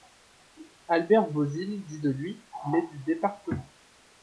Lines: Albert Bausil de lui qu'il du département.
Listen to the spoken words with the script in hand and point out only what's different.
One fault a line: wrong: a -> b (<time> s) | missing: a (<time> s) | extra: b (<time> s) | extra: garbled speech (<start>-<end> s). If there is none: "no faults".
extra: dit (1.9 s)
extra: est (2.8 s)